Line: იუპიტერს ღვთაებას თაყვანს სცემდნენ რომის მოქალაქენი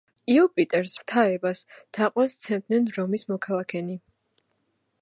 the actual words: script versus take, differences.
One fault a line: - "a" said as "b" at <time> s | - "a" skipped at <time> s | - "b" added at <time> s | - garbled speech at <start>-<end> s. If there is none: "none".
none